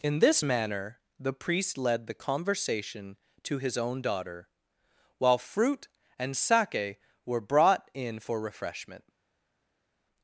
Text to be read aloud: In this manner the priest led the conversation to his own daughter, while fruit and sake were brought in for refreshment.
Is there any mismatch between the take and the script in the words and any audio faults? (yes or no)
no